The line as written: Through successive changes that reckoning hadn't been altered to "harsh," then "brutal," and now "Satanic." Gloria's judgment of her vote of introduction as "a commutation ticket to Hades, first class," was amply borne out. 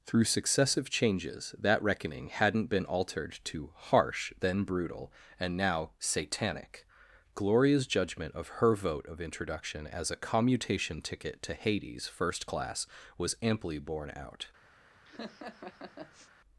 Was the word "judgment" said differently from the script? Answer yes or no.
no